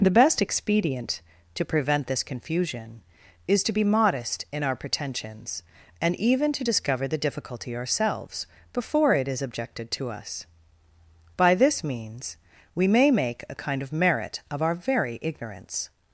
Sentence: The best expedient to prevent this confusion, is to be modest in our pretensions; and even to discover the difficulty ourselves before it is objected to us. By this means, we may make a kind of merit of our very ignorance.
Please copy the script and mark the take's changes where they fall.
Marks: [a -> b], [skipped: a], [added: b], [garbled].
The best expedient to prevent this confusion, is to be modest in our pretensions; and even to discover the difficulty ourselves before it is objected to us. By this means, we may make a kind of merit of our very ignorance.